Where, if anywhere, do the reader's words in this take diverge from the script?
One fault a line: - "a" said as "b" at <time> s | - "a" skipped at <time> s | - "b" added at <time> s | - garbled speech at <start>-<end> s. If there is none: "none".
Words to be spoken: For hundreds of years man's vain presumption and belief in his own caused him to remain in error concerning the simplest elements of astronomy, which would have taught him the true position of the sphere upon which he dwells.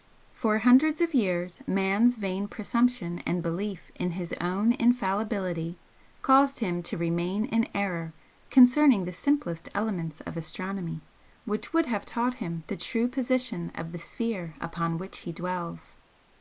- "infallibility" added at 4.7 s